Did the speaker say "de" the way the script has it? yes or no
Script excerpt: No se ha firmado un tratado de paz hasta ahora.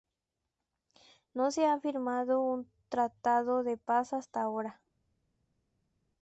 yes